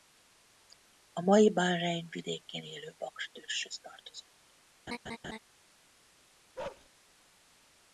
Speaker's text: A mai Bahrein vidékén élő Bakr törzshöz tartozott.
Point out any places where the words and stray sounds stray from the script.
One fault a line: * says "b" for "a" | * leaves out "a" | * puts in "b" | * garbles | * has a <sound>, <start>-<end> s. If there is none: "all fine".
* has a laugh, 4.9-5.4 s
* has a bark, 6.6-6.9 s